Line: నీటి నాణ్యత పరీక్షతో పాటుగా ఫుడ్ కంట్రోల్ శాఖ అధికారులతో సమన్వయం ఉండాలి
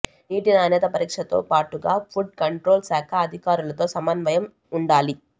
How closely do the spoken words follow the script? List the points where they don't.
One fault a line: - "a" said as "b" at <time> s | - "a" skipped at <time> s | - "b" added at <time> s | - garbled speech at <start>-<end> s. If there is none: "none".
none